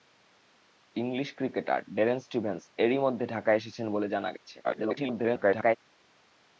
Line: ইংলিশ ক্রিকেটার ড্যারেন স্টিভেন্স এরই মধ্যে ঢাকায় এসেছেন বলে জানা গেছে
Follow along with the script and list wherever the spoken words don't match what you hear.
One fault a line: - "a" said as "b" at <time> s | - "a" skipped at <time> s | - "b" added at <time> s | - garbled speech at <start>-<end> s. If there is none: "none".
- garbled speech at 4.6-5.8 s